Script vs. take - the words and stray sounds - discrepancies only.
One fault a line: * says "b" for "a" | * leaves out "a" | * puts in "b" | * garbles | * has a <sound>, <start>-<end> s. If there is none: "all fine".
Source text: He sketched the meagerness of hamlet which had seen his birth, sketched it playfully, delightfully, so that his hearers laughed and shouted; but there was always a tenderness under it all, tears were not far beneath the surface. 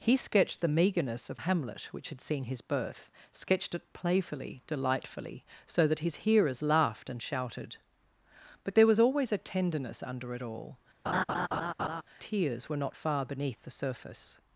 * has a laugh, 11.1-12.0 s